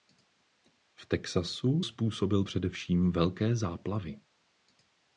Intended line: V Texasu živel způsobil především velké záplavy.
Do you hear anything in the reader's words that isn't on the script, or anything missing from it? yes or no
yes